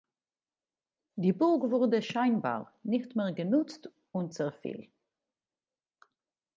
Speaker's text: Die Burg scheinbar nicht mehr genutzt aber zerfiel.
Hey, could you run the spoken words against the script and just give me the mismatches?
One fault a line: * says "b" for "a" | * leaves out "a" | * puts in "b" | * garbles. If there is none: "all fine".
* puts in "wurde"
* says "und" for "aber"